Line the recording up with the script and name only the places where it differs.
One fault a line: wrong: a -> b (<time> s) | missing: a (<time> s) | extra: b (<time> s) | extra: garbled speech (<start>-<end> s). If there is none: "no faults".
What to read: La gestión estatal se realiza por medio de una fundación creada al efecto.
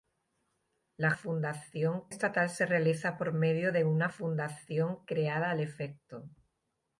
wrong: gestión -> fundación (1.1 s)